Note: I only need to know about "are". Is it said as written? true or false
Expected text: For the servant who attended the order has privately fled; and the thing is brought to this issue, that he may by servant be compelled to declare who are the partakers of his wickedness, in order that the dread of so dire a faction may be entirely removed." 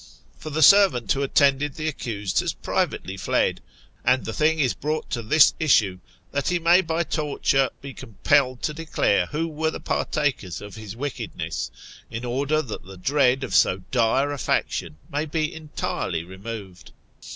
false